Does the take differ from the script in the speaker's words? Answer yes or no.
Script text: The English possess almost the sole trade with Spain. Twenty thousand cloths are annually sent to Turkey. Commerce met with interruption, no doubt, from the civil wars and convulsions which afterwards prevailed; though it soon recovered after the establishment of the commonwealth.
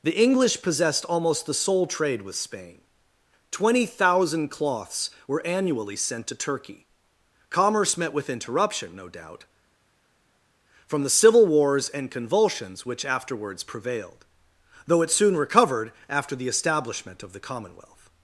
yes